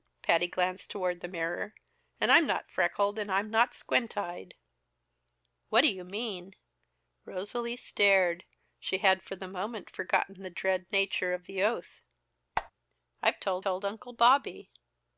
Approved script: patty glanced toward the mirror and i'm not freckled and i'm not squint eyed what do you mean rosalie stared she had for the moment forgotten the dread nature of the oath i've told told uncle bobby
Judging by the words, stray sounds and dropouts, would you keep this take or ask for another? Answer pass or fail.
fail